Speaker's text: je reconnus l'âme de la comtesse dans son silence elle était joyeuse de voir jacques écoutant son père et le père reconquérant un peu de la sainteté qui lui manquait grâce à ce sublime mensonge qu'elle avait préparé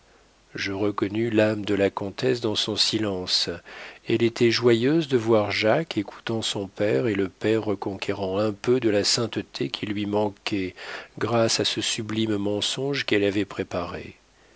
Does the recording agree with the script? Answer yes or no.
yes